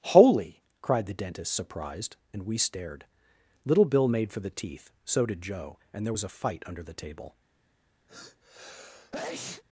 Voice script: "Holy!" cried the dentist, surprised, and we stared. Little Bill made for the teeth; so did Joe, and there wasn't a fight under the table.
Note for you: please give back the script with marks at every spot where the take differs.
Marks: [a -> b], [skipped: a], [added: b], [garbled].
"Holy!" cried the dentist, surprised, and we stared. Little Bill made for the teeth; so did Joe, and there [wasn't -> was] a fight under the table.